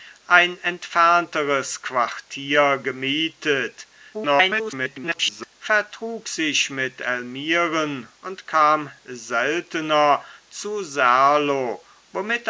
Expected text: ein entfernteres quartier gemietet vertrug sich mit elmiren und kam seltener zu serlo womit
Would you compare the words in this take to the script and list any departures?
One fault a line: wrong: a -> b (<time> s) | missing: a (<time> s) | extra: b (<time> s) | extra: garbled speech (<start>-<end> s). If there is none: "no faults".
extra: garbled speech (4.1-5.5 s)